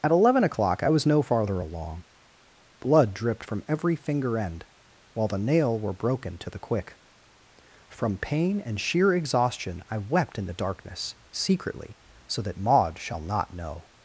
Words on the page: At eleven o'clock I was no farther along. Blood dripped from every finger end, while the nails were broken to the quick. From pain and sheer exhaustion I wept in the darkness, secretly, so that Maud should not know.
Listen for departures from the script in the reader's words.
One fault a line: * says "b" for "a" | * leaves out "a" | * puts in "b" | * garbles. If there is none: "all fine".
* says "nail" for "nails"
* says "shall" for "should"